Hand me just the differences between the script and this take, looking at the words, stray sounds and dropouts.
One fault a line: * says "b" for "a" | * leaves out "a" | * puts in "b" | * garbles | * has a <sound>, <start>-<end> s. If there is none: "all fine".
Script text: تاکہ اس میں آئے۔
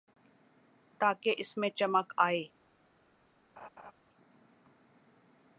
* puts in "چمک"
* has a laugh, 3.6-3.9 s